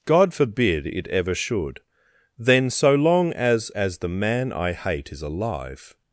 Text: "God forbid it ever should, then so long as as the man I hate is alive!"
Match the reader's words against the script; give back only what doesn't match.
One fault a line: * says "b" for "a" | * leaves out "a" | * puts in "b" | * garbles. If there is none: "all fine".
all fine